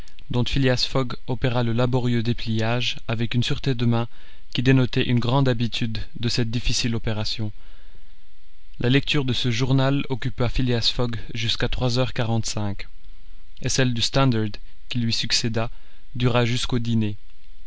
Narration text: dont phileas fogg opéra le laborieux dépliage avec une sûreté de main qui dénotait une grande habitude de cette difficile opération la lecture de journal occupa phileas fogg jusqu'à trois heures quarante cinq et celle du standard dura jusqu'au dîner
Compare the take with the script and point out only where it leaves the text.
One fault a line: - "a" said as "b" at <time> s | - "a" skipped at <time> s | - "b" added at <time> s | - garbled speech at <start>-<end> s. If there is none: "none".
- "ce" added at 9.3 s
- "qui lui succéda" added at 14.9 s